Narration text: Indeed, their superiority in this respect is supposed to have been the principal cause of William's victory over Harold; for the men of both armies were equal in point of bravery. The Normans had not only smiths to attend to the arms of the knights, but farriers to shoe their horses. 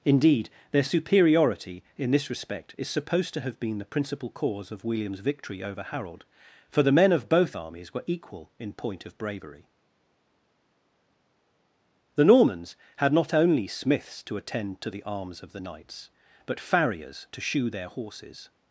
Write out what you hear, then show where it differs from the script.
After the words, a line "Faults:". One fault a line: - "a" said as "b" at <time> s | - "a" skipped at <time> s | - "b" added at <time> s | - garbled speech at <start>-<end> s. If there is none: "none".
Indeed, their superiority in this respect is supposed to have been the principal cause of William's victory over Harold; for the men of both armies were equal in point of bravery. The Normans had not only smiths to attend to the arms of the knights, but farriers to shoe their horses.
Faults:
none